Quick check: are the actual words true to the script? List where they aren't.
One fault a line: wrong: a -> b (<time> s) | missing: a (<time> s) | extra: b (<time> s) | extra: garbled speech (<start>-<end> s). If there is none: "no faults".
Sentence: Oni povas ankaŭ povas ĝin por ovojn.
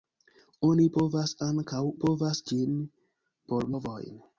no faults